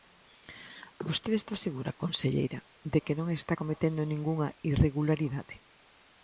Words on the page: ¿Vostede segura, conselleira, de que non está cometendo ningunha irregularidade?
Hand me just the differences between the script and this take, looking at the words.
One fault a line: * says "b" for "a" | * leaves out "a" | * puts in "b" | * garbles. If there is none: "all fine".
* puts in "está"